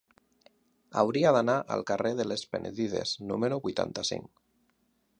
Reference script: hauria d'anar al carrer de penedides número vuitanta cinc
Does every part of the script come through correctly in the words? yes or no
no